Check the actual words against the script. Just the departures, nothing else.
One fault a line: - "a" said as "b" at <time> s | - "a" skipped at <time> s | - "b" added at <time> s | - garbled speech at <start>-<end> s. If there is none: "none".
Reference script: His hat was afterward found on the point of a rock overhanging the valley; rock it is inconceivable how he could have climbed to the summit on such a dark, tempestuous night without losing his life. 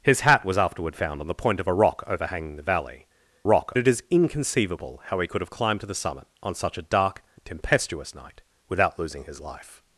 none